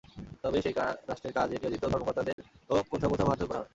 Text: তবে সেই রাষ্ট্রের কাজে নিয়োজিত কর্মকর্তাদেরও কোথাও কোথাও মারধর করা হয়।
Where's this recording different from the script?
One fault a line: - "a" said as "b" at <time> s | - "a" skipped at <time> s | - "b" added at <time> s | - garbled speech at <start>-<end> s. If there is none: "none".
none